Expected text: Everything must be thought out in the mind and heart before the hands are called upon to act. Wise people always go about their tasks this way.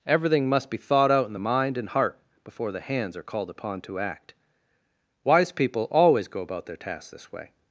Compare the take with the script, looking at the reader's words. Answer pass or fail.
pass